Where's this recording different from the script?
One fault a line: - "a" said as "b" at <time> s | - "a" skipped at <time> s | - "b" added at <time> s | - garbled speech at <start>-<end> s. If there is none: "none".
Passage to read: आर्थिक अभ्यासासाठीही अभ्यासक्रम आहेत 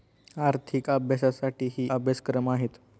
none